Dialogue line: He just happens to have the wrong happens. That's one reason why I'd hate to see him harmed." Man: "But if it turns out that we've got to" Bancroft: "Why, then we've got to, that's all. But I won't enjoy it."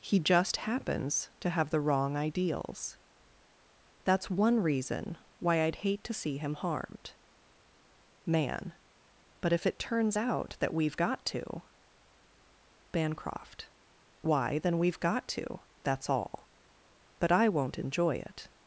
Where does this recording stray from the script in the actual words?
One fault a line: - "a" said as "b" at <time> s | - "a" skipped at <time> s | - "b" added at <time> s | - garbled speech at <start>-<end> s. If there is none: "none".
- "happens" said as "ideals" at 2.2 s